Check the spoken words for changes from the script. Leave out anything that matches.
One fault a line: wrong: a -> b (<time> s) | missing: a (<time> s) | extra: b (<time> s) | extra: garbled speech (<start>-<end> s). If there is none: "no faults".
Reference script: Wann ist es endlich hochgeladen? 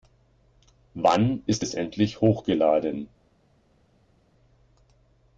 no faults